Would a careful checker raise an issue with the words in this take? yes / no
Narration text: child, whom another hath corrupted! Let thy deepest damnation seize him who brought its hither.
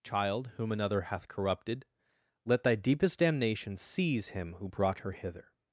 yes